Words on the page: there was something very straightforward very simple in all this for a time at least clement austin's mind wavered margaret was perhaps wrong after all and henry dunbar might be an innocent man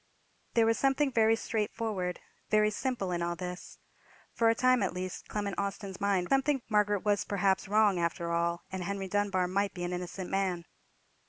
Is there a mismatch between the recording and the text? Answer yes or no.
yes